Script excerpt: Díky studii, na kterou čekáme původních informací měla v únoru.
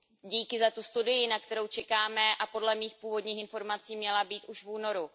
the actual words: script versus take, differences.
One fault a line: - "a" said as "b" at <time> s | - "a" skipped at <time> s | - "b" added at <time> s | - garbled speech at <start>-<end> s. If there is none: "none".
- "za tu" added at 0.6 s
- "a podle mých" added at 2.4 s
- "být už" added at 4.2 s